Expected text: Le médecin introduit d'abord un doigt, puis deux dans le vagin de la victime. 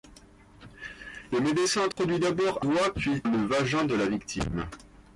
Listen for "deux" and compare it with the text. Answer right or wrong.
wrong